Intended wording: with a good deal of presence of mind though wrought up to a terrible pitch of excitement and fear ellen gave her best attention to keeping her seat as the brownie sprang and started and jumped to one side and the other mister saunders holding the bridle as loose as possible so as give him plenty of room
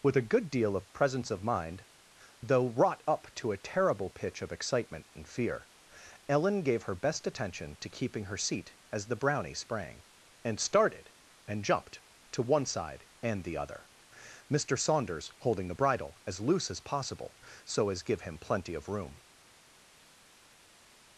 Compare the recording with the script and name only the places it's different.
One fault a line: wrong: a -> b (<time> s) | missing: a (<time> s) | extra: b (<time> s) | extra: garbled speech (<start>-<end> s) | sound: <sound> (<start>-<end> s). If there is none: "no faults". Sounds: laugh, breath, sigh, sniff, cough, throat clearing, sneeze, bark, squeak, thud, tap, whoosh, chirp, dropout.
no faults